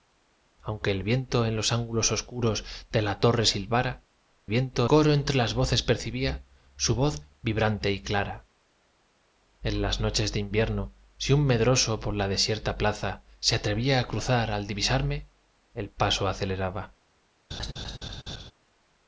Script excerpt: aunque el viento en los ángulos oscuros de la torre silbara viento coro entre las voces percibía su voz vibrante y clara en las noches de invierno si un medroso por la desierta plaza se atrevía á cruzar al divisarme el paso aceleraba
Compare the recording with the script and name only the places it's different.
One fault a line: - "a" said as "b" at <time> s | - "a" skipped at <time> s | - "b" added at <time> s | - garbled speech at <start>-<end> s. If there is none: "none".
none